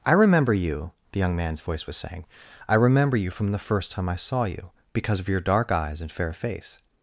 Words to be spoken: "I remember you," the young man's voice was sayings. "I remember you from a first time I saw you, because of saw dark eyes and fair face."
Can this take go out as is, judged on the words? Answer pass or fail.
fail